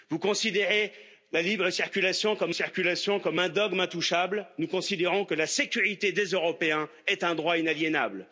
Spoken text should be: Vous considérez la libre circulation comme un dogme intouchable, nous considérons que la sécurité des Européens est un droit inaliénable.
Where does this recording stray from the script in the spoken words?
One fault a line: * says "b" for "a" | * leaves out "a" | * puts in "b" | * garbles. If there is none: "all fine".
* puts in "circulation comme"